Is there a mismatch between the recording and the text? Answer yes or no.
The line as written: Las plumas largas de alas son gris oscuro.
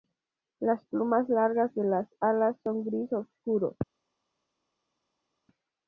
yes